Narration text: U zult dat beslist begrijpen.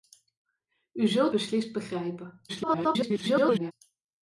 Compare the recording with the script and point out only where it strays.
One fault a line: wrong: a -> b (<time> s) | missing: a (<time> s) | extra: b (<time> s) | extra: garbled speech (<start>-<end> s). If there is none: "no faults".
missing: dat (1.3 s)
extra: garbled speech (2.5-3.7 s)